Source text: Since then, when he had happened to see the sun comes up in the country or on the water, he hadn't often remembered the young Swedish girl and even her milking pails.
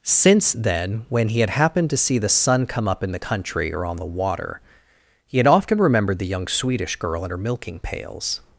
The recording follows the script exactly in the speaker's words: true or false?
false